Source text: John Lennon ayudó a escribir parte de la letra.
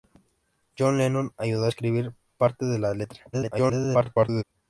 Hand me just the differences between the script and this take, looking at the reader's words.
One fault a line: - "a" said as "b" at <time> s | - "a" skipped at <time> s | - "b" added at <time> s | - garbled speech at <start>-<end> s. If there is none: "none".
- garbled speech at 3.3-4.4 s